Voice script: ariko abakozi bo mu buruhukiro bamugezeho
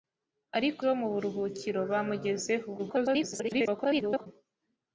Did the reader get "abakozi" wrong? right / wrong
wrong